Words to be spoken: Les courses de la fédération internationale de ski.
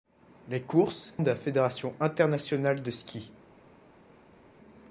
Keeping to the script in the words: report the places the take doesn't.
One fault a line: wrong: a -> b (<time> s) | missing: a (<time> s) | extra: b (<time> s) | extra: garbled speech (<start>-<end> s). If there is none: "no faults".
no faults